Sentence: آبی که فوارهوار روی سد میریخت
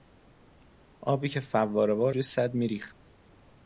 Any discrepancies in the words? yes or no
no